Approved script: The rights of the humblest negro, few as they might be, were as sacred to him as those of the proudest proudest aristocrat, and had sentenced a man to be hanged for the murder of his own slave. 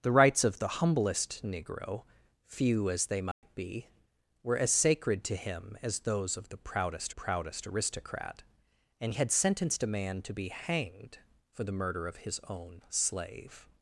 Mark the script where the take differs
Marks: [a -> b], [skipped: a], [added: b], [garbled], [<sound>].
The rights of the humblest negro, few as they might [dropout] be, were as sacred to him as those of the proudest proudest aristocrat, and had sentenced a man to be hanged for the murder of his own slave.